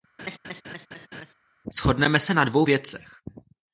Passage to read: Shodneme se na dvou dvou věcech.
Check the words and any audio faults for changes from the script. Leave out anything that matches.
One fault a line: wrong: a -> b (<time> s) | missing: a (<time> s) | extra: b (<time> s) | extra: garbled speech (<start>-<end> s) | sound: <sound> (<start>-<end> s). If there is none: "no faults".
sound: laugh (0.2-1.3 s)
missing: dvou (2.7 s)